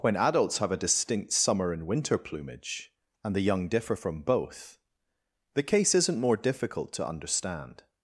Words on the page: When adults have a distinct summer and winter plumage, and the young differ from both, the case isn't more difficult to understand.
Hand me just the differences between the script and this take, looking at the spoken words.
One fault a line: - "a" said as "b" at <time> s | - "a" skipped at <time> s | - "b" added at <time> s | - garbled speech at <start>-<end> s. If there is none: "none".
none